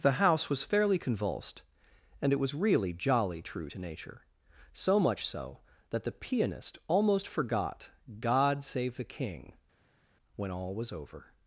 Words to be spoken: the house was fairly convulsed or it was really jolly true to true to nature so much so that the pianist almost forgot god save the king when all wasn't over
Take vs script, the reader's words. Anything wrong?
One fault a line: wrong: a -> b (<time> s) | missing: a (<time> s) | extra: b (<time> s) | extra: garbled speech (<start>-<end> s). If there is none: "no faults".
wrong: or -> and (2.2 s)
missing: true to (3.8 s)
wrong: wasn't -> was (10.7 s)